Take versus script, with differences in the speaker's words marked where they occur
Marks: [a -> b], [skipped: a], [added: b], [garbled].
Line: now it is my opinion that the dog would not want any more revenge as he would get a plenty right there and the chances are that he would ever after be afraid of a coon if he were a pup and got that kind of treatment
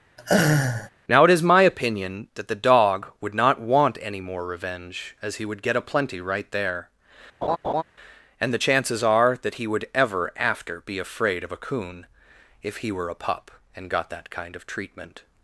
now it is my opinion that the dog would not want any more revenge as he would get a plenty right there and the chances are that he would ever after be afraid of a coon if he were a pup and got that kind of treatment